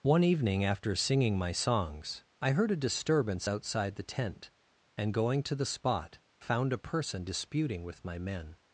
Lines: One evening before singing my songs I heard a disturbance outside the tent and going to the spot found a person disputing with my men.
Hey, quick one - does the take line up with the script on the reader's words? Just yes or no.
no